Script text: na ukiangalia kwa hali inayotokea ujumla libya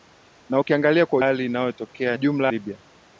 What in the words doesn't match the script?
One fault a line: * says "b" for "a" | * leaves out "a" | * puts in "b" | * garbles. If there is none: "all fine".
all fine